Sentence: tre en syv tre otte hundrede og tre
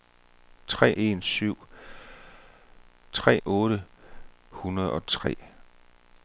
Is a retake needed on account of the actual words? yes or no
no